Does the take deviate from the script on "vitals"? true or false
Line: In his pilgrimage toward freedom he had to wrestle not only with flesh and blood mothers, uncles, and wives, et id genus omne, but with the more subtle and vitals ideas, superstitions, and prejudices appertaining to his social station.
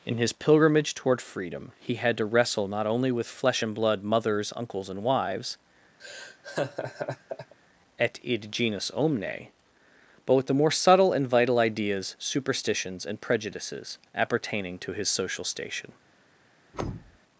true